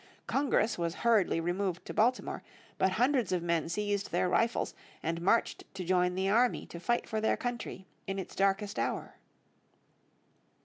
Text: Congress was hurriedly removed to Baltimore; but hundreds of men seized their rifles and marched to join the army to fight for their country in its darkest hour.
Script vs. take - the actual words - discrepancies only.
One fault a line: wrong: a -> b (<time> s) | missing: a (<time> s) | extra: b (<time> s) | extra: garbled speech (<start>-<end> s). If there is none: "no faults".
no faults